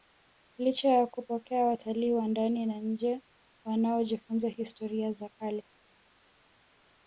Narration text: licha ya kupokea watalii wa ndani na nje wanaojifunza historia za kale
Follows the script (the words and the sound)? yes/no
yes